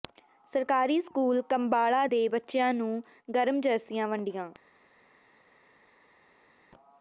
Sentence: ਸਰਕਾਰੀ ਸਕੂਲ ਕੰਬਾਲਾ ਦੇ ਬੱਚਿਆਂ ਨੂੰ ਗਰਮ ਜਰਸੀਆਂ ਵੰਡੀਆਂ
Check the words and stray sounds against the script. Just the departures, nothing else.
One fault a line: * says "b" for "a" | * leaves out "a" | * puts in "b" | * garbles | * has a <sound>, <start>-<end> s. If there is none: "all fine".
all fine